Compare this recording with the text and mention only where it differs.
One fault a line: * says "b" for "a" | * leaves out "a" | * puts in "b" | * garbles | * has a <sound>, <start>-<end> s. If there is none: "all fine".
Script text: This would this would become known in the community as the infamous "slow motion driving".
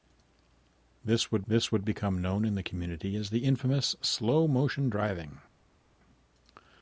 all fine